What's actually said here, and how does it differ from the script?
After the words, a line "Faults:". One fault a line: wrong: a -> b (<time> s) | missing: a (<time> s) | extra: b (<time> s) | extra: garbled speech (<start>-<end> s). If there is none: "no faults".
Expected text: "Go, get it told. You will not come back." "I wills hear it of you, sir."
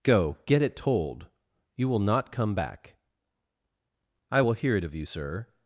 "Go, get it told. You will not come back." "I will hear it of you, sir."
Faults:
wrong: wills -> will (4.4 s)